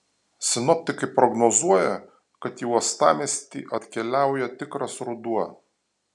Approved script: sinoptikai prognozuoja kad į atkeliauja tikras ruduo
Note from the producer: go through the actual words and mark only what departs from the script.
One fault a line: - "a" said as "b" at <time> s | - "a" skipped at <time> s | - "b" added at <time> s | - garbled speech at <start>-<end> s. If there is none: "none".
- "uostamiestį" added at 2.7 s